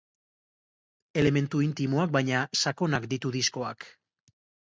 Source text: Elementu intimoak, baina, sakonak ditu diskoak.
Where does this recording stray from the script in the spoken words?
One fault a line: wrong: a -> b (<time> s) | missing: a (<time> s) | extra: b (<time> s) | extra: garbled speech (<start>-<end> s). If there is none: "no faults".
no faults